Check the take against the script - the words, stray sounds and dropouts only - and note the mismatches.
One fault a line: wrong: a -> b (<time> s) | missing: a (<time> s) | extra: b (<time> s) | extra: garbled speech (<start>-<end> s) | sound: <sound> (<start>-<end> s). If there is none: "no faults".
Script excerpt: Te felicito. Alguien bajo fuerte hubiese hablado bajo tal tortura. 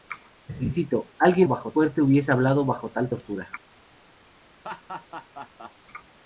sound: laugh (4.6-5.7 s)